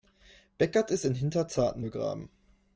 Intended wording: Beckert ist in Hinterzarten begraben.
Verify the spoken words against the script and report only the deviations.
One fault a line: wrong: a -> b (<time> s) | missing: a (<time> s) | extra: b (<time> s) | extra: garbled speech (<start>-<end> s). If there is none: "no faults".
no faults